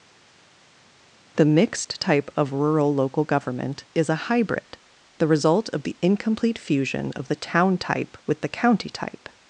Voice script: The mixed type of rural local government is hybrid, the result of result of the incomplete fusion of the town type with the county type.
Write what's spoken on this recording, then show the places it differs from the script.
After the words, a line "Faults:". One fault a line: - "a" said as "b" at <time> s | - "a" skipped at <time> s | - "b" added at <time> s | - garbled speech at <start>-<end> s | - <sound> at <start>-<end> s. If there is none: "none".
The mixed type of rural local government is a hybrid, the result of the incomplete fusion of the town type with the county type.
Faults:
- "a" added at 4.1 s
- "result of" skipped at 5.8 s